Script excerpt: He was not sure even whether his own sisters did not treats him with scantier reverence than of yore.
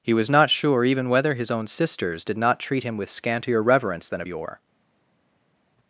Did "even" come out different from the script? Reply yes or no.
no